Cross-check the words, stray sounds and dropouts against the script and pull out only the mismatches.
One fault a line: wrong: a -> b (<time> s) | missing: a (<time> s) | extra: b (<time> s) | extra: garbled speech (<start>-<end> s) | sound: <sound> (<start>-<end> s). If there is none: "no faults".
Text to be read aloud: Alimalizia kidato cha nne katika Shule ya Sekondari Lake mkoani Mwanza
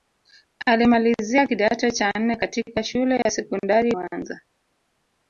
sound: dropout (3.2-3.3 s)
missing: Lake mkoani (3.9 s)